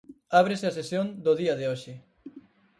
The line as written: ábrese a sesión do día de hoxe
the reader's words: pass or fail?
pass